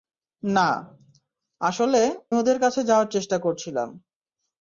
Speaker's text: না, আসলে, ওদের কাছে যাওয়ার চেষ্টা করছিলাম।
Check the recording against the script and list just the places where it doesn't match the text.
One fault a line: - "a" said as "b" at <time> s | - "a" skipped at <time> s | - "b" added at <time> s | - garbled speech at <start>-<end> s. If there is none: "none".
none